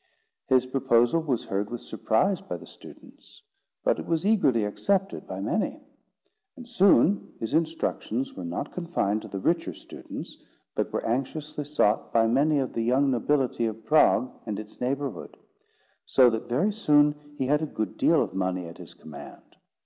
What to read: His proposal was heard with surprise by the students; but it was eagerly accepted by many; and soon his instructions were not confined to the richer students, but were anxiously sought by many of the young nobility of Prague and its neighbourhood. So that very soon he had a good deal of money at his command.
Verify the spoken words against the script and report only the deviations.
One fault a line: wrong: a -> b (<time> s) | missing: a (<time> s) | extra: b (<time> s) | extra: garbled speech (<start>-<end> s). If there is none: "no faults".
no faults